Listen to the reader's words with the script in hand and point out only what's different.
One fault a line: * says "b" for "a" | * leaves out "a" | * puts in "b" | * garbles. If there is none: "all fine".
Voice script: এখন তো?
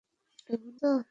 all fine